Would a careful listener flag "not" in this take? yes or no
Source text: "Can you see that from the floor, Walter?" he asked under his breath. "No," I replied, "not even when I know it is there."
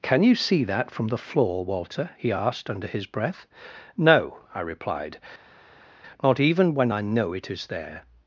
no